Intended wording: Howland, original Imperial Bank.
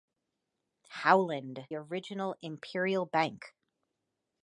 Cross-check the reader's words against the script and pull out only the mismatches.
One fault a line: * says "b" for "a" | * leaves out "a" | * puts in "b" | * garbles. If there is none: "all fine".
all fine